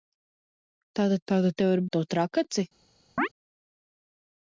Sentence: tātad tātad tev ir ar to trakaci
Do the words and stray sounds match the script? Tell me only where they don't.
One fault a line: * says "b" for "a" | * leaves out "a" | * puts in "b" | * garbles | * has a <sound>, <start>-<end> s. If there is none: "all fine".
* has a chirp, 3.2-3.3 s